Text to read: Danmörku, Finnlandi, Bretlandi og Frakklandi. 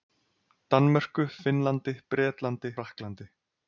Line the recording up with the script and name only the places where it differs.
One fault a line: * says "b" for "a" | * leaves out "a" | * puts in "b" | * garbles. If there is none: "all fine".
* leaves out "og"